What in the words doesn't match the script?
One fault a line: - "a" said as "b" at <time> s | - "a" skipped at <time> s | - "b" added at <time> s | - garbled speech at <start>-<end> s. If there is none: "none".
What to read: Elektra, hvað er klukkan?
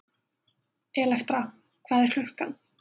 none